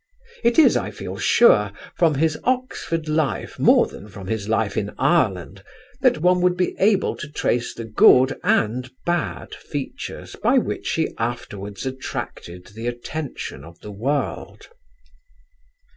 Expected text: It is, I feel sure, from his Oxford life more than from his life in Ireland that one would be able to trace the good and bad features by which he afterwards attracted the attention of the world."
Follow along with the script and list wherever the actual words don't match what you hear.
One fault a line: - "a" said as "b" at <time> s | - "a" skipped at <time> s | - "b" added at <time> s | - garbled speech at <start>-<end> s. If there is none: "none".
none